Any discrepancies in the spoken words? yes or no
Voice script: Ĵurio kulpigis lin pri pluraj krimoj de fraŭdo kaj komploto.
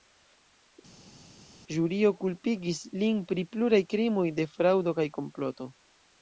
no